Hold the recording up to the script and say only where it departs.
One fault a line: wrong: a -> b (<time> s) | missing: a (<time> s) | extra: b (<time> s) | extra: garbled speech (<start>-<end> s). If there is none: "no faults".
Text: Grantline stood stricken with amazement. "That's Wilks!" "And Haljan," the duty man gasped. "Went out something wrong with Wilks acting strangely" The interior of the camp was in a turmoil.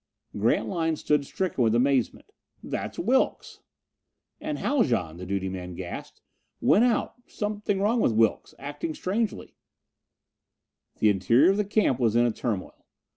no faults